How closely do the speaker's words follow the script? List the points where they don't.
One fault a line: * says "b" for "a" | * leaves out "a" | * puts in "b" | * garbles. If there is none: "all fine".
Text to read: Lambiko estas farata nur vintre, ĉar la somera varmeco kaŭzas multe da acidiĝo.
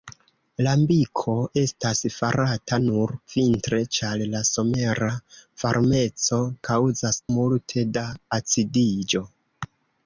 all fine